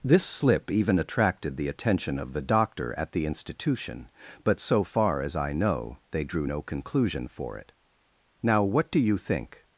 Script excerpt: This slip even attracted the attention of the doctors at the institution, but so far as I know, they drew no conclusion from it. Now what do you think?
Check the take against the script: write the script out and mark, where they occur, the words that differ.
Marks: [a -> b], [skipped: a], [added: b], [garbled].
This slip even attracted the attention of the [doctors -> doctor] at the institution, but so far as I know, they drew no conclusion [from -> for] it. Now what do you think?